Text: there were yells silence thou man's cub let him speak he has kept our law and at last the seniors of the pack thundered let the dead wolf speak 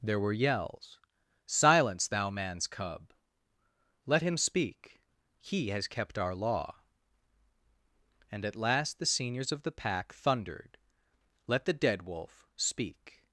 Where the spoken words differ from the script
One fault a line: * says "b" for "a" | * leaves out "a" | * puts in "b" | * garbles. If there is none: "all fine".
all fine